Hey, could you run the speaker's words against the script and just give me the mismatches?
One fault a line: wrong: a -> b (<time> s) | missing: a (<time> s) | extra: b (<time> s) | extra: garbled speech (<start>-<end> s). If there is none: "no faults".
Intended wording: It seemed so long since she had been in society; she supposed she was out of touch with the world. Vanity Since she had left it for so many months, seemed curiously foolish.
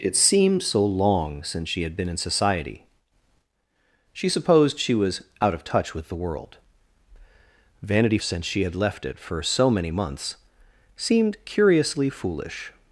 no faults